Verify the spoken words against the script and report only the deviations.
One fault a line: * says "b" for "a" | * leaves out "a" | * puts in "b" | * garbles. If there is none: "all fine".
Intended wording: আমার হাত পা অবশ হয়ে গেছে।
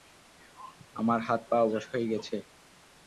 all fine